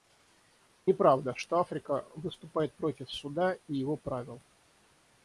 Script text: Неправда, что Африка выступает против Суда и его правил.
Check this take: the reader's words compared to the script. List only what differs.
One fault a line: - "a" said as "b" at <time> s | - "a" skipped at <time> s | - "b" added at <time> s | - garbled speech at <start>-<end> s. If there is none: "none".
none